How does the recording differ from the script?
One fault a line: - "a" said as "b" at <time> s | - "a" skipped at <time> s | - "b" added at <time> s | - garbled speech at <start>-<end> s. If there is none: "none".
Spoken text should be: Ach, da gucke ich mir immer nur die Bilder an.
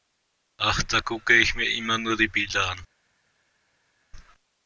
none